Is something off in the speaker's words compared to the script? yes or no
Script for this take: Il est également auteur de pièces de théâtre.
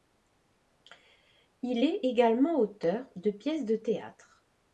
no